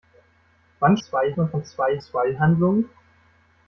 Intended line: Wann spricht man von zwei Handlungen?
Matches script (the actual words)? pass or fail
fail